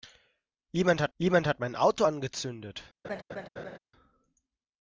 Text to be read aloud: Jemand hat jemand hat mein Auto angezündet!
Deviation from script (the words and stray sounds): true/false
true